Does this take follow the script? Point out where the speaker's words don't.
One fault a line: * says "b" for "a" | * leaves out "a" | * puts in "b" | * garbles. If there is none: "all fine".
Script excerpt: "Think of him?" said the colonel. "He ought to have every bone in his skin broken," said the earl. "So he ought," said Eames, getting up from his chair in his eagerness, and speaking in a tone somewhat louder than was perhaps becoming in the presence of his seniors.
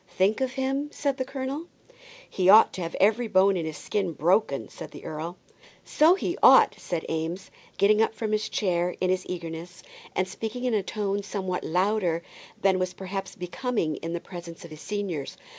all fine